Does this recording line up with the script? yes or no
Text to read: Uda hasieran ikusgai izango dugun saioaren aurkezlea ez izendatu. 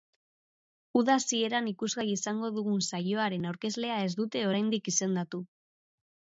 no